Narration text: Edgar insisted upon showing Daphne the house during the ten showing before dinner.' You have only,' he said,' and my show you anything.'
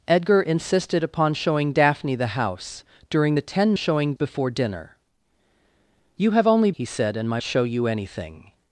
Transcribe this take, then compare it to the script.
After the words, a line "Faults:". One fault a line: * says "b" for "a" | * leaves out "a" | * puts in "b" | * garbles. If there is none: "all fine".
Edgar insisted upon showing Daphne the house during the ten showing before dinner.' You have only,' he said,' and my show you anything.'
Faults:
all fine